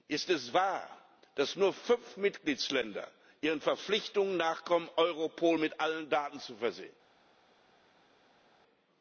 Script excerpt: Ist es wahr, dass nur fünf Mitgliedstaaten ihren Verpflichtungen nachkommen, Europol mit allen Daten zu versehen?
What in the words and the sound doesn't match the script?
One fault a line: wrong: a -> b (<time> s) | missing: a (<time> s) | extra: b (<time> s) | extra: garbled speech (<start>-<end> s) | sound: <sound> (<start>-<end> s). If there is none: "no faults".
no faults